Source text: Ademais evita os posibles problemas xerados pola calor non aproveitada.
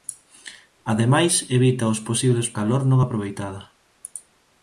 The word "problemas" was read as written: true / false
false